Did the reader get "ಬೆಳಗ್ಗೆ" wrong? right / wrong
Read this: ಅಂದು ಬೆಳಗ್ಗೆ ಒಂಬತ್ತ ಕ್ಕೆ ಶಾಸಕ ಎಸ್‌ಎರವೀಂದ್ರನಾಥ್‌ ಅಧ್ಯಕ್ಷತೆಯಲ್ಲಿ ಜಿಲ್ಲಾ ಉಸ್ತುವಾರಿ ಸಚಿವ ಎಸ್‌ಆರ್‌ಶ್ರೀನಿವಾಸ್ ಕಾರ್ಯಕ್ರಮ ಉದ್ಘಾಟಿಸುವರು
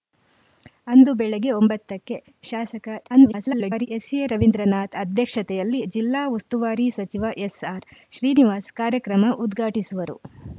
right